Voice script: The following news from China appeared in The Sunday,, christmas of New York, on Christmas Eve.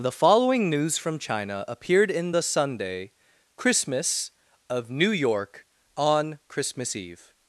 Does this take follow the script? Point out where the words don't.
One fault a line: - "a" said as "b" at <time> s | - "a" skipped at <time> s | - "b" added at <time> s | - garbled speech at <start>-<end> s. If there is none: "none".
none